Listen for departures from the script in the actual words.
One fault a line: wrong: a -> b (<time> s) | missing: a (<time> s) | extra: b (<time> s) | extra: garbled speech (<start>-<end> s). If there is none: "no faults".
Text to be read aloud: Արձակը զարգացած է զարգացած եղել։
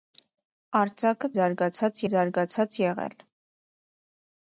no faults